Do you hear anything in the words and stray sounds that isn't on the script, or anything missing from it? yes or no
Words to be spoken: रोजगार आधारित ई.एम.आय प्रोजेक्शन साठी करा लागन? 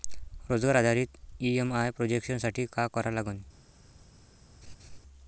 yes